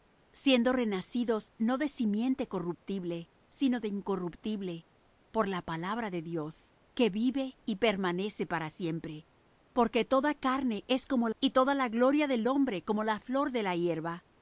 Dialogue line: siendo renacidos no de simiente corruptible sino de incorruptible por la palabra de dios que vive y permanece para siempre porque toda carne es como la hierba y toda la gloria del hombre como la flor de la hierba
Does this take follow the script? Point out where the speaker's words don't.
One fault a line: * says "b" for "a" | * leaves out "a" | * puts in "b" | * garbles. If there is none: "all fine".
* leaves out "la hierba"